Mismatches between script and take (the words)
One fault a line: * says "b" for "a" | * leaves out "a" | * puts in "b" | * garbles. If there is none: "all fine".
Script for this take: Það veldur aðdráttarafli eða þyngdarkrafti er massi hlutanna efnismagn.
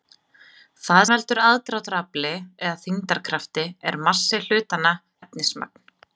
all fine